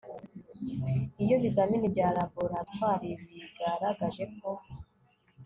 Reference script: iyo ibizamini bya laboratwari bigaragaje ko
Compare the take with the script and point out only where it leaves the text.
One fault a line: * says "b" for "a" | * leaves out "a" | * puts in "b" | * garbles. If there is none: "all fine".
all fine